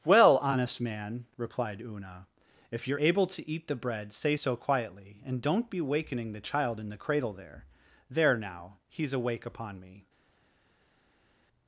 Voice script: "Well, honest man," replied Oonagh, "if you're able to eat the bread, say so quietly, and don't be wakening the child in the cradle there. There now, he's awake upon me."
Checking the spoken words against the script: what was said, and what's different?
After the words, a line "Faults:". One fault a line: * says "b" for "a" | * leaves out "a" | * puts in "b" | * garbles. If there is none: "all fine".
"Well, honest man," replied Oonagh, "if you're able to eat the bread, say so quietly, and don't be wakening the child in the cradle there. There now, he's awake upon me."
Faults:
all fine